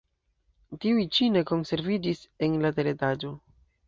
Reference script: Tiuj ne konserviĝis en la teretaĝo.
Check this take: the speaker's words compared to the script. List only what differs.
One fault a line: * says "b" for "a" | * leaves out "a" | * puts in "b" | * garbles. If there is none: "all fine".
* puts in "ĉi"